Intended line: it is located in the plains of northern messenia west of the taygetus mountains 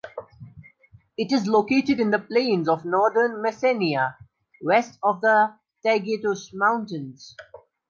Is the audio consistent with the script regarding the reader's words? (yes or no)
yes